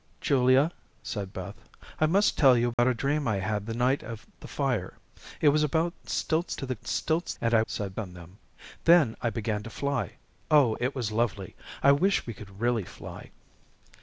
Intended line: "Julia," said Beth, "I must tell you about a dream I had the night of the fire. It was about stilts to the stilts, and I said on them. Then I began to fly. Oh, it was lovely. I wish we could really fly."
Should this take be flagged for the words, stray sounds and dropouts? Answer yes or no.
yes